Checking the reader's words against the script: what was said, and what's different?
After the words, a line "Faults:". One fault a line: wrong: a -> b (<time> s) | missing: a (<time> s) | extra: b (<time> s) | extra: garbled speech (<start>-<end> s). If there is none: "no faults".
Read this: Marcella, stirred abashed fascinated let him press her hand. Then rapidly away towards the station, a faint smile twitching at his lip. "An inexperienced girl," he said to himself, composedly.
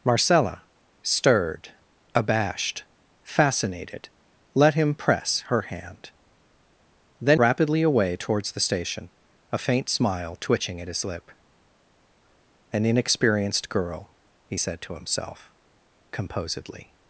Marcella, stirred abashed fascinated let him press her hand. Then rapidly away towards the station, a faint smile twitching at his lip. "An inexperienced girl," he said to himself, composedly.
Faults:
no faults